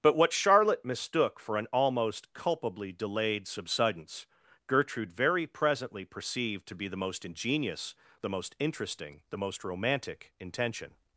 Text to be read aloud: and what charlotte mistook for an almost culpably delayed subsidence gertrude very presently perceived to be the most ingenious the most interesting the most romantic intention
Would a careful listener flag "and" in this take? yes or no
yes